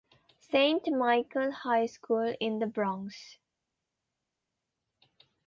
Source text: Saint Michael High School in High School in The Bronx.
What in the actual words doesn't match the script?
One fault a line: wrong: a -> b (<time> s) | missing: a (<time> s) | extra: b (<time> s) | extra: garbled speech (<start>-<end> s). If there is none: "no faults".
missing: High School in (2.6 s)